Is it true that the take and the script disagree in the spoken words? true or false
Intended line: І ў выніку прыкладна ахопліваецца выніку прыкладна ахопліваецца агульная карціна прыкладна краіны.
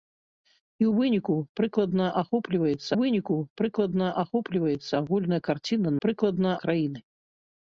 false